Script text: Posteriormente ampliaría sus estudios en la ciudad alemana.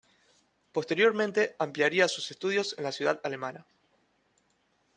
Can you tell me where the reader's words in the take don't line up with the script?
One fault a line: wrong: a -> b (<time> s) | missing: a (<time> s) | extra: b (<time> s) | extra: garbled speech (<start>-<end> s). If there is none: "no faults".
no faults